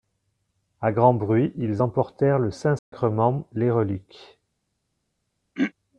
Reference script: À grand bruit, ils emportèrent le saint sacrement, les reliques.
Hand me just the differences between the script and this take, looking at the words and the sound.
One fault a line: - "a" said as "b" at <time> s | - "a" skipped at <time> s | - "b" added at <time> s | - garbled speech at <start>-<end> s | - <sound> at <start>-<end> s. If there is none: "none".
- dropout at 2.8-2.9 s
- throat clearing at 5.5-5.7 s